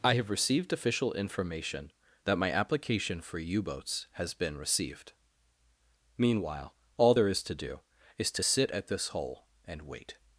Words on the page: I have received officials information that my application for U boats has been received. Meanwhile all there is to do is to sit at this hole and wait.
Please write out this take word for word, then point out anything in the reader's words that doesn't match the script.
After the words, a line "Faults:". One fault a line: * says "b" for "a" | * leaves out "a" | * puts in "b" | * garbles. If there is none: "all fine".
I have received official information that my application for U boats has been received. Meanwhile all there is to do is to sit at this hole and wait.
Faults:
* says "official" for "officials"